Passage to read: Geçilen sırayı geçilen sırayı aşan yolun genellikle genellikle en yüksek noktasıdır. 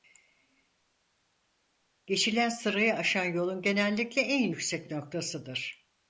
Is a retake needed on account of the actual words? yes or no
yes